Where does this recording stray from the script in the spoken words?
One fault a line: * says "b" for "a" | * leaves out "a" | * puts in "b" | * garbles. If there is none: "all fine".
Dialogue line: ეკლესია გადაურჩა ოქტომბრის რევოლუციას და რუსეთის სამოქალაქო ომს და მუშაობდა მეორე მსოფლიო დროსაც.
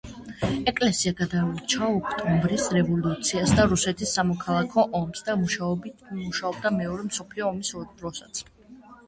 * puts in "ომის"